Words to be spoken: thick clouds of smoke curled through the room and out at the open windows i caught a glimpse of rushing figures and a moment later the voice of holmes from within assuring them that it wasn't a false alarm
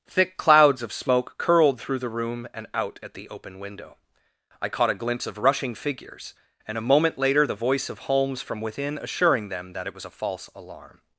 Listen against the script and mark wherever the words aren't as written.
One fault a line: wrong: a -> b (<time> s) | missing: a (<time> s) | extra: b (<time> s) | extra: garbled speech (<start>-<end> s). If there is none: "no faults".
wrong: windows -> window (3.6 s)
wrong: wasn't -> was (9.9 s)